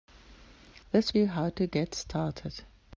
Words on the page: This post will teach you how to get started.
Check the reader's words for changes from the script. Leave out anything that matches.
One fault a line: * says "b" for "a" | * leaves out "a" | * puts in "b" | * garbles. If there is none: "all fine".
* leaves out "post will teach"